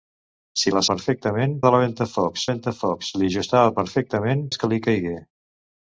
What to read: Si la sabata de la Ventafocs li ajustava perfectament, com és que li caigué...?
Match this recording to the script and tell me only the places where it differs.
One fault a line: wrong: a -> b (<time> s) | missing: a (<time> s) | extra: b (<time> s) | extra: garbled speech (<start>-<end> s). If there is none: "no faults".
wrong: sabata -> perfectament (0.9 s)
extra: Ventafocs (2.5 s)
missing: com (4.5 s)